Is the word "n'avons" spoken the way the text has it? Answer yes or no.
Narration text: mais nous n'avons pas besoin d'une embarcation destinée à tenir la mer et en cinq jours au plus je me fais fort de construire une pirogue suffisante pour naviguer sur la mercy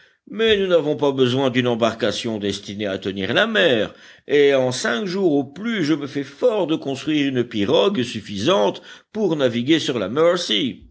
yes